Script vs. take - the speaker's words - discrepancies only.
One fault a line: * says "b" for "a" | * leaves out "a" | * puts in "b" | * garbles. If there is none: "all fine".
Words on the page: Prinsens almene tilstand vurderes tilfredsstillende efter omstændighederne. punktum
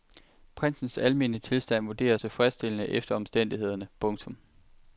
all fine